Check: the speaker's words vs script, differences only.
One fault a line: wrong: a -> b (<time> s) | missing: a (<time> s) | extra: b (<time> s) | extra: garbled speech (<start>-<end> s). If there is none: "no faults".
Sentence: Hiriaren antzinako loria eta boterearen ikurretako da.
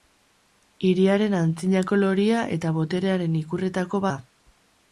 no faults